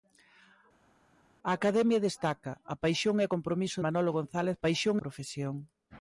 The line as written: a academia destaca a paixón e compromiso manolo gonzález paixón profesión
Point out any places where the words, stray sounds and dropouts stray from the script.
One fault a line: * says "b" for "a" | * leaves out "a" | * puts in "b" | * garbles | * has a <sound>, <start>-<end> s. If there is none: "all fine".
all fine